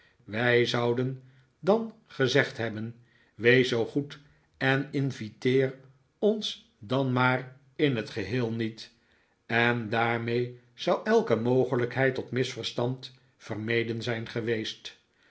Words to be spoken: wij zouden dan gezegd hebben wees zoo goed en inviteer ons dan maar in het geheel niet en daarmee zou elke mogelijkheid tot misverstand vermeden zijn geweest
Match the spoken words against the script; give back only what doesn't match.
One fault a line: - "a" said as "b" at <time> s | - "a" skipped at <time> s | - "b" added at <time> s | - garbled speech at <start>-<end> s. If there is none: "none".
none